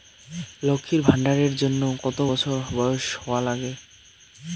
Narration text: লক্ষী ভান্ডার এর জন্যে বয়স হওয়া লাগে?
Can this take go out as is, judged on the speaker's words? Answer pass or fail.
fail